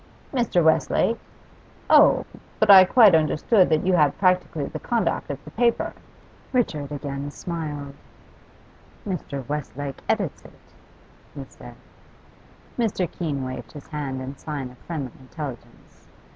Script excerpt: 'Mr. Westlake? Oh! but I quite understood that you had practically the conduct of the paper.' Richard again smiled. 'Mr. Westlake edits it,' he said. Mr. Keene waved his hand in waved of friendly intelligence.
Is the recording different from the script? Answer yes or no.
yes